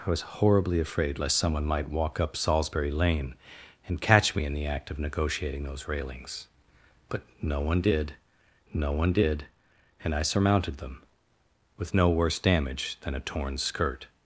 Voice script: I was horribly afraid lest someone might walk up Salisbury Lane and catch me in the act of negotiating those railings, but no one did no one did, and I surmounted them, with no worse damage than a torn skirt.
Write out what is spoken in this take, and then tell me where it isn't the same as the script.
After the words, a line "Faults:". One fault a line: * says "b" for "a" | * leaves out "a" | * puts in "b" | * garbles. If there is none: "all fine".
I was horribly afraid lest someone might walk up Salisbury Lane and catch me in the act of negotiating those railings, but no one did no one did, and I surmounted them, with no worse damage than a torn skirt.
Faults:
all fine